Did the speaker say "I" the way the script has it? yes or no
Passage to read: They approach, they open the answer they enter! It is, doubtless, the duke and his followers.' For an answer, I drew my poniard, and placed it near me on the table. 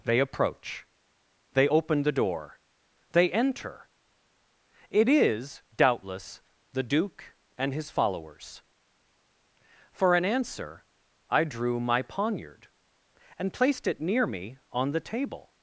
yes